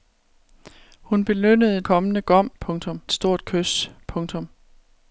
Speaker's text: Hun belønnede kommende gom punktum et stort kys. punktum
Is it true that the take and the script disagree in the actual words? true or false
false